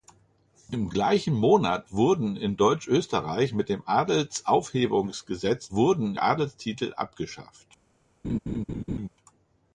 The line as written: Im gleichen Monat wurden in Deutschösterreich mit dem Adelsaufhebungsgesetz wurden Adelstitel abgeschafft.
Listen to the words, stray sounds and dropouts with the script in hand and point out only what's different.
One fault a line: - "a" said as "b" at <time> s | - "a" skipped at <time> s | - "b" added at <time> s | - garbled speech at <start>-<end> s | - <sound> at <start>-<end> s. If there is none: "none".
- laugh at 8.2-9.1 s